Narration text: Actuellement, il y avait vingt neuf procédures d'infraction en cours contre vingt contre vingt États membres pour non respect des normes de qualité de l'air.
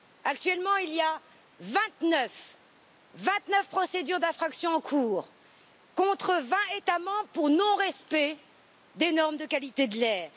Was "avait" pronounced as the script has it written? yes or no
no